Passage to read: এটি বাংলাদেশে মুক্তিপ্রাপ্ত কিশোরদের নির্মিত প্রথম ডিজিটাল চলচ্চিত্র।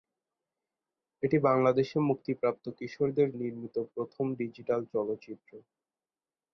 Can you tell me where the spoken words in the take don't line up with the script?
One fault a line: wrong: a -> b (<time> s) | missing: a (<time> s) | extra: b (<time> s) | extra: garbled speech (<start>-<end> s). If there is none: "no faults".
no faults